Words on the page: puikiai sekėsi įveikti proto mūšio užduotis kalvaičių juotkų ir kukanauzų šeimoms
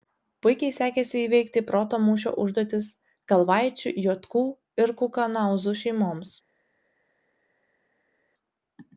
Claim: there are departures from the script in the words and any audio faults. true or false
false